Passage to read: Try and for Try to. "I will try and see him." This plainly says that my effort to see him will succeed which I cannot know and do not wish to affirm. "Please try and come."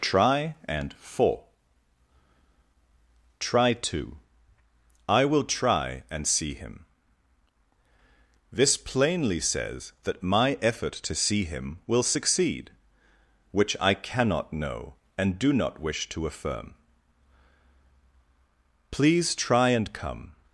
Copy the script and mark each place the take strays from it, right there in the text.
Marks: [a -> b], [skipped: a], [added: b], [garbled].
Try and for Try to. "I will try and see him." This plainly says that my effort to see him will succeed which I cannot know and do not wish to affirm. "Please try and come."